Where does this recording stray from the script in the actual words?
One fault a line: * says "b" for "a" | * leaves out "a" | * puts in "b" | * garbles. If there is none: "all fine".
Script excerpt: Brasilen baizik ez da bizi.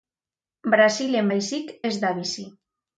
all fine